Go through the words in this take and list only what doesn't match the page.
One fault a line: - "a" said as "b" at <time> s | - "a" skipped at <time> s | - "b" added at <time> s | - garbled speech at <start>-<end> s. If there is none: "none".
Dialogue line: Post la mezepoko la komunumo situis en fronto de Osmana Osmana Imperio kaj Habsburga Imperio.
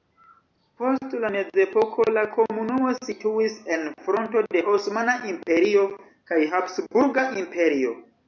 - "Osmana" skipped at 5.2 s